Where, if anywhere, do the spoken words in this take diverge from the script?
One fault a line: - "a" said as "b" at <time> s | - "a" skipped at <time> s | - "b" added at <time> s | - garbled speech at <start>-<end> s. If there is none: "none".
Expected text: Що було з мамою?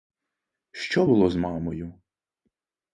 none